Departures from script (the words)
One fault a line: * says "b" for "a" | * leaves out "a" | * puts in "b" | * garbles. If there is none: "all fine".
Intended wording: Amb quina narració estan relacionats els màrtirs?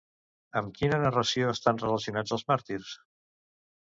all fine